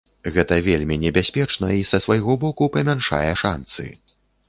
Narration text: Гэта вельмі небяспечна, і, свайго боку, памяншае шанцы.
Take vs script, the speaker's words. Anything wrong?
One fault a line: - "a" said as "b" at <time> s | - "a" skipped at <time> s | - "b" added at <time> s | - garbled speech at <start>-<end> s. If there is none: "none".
- "са" added at 1.9 s